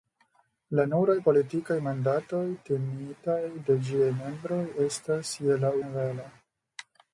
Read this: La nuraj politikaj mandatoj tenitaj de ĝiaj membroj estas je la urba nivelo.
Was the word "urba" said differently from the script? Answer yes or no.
yes